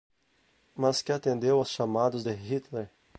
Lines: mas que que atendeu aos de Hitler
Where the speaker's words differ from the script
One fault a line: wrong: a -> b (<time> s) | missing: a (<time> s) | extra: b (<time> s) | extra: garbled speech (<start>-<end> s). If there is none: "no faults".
missing: que (1.1 s)
extra: chamados (1.7 s)